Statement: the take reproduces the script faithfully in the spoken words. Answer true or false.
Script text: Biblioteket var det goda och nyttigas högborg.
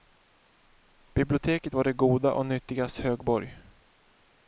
true